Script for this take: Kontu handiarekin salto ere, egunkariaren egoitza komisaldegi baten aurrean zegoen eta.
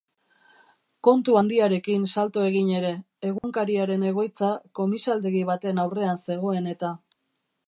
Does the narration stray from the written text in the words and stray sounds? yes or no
yes